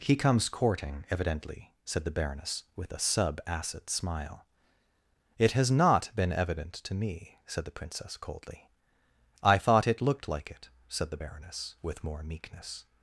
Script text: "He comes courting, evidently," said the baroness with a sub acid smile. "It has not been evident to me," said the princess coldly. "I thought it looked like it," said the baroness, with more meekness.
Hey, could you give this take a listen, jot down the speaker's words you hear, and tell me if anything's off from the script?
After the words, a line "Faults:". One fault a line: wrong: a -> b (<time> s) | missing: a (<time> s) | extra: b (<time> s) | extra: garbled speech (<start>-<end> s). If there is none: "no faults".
"He comes courting, evidently," said the baroness with a sub acid smile. "It has not been evident to me," said the princess coldly. "I thought it looked like it," said the baroness, with more meekness.
Faults:
no faults